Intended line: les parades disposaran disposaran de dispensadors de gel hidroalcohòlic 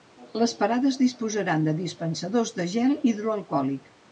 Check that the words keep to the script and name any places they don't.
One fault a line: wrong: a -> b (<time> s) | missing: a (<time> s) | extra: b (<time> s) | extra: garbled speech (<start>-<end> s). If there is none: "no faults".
missing: disposaran (1.7 s)